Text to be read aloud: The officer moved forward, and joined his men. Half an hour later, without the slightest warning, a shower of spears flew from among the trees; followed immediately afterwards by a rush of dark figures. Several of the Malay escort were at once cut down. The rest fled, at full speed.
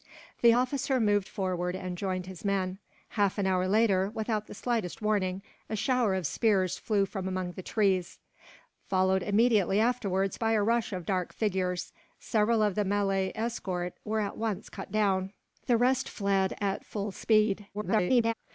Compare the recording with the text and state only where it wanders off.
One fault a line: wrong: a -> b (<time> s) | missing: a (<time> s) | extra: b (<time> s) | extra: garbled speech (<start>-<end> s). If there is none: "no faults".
extra: garbled speech (17.7-18.3 s)